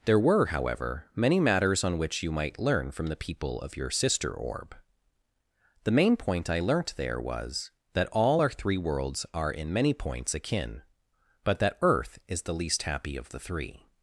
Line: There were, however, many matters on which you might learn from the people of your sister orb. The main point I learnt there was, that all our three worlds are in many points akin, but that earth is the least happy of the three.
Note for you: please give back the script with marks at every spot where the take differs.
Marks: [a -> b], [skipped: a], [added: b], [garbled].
There were, however, many matters on which you might learn from the people of your sister orb. The main point I learnt there was, that all our three worlds are in many points akin, but that earth is the least happy of the three.